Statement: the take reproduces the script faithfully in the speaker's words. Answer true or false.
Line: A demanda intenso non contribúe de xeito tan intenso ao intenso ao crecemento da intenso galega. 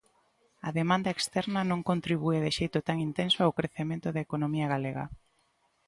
false